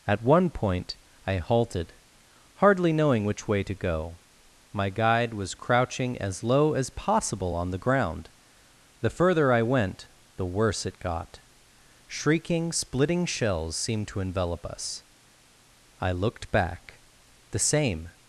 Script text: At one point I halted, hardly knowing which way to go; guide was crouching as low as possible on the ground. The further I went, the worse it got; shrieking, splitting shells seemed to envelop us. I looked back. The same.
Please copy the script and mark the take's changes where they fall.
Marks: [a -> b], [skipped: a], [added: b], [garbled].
At one point I halted, hardly knowing which way to go; [added: my] guide was crouching as low as possible on the ground. The further I went, the worse it got; shrieking, splitting shells seemed to envelop us. I looked back. The same.